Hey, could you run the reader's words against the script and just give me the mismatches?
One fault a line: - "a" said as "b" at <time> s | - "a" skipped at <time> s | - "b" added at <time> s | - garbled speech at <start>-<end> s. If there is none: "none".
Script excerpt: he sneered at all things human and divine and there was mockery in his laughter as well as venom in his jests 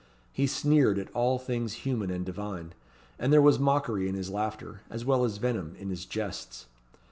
none